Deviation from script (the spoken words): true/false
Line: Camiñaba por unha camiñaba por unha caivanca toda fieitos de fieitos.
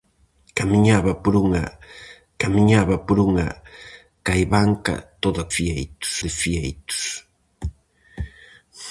false